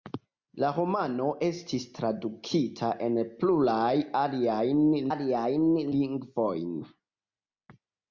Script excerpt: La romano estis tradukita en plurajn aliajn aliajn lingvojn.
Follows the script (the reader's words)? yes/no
yes